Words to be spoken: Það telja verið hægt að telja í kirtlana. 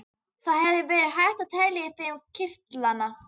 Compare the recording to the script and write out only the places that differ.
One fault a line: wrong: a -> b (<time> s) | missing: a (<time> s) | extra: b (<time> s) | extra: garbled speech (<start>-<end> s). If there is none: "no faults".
wrong: telja -> hefði (0.7 s)
extra: þeim (2.0 s)